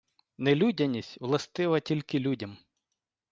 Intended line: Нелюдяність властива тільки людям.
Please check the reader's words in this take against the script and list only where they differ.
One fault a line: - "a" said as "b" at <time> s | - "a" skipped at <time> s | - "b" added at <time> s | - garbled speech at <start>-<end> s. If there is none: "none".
none